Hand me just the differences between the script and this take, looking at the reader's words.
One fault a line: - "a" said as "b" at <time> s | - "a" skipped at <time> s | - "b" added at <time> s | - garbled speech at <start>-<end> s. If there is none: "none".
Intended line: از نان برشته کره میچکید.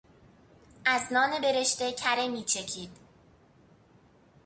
none